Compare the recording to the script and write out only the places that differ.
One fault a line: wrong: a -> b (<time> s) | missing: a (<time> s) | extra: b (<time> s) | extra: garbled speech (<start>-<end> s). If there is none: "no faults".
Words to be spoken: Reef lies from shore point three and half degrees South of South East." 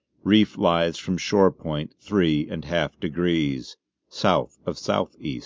no faults